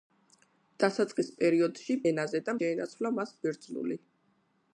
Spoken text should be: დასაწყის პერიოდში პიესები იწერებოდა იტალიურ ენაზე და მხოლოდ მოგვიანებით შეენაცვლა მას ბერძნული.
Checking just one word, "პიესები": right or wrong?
wrong